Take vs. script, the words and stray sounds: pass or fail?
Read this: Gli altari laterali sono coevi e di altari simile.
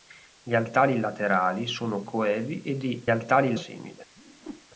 fail